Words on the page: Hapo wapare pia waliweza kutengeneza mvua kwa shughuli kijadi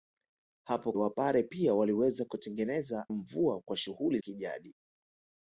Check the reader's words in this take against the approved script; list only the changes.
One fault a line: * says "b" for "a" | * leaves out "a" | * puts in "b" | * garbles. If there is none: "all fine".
all fine